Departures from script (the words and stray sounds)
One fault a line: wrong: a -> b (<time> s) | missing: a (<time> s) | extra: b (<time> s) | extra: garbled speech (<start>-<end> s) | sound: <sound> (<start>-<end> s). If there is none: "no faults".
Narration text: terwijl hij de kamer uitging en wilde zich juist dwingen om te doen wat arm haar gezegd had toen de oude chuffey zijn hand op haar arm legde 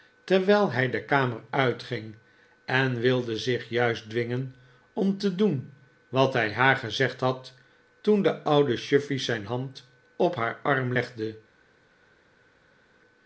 wrong: arm -> hij (6.3 s)